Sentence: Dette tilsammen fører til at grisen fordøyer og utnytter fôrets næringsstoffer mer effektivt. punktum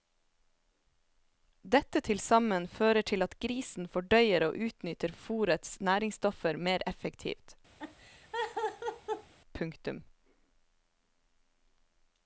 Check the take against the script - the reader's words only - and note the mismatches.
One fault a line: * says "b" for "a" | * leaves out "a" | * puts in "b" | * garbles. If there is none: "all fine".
all fine